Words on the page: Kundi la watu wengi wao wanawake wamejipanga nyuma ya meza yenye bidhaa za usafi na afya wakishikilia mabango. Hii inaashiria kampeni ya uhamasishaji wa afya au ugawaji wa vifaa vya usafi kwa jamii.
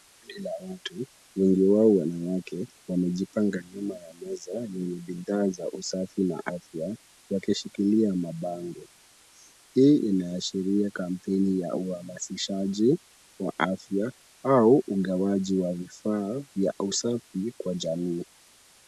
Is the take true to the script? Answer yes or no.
yes